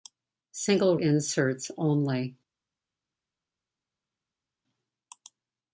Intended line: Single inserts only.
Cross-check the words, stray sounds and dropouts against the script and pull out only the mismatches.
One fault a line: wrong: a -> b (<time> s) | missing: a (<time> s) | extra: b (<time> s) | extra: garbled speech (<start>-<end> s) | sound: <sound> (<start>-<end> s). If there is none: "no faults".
no faults